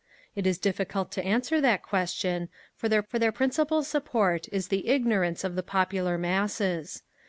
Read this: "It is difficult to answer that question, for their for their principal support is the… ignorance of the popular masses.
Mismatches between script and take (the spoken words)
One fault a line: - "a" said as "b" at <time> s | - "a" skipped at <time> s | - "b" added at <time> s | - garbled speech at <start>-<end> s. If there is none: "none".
none